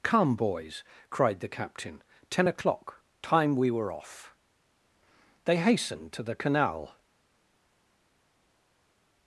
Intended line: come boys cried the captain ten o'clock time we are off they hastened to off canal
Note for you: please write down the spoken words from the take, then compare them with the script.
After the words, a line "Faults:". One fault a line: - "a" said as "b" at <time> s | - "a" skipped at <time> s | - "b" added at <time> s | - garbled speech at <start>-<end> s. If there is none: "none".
come boys cried the captain ten o'clock time we were off they hastened to the canal
Faults:
- "are" said as "were" at 3.7 s
- "off" said as "the" at 6.2 s